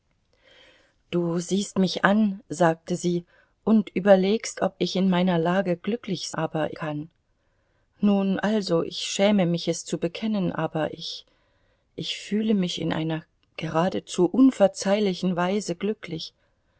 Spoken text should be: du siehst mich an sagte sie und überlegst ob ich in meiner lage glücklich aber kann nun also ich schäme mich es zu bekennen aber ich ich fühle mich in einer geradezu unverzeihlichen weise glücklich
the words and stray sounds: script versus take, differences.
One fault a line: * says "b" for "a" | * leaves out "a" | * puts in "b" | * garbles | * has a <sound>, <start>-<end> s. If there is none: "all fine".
all fine